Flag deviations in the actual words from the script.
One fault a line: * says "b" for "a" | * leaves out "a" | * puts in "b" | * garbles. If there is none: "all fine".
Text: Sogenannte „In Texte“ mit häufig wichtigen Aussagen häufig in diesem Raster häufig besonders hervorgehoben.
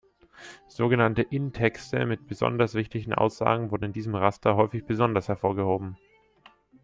* says "besonders" for "häufig"
* says "wurden" for "häufig"